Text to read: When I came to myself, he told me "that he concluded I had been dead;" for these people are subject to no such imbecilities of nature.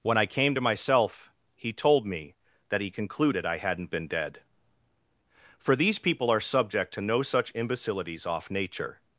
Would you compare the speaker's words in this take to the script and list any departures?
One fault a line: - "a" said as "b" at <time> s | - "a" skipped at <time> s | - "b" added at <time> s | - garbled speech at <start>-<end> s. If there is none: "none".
- "had" said as "hadn't" at 3.6 s
- "of" said as "off" at 8.3 s